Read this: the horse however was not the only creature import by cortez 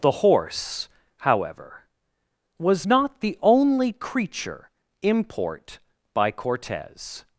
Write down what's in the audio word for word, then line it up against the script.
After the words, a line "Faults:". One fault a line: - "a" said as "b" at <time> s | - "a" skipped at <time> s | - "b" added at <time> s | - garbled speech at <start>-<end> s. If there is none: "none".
the horse however was not the only creature import by cortez
Faults:
none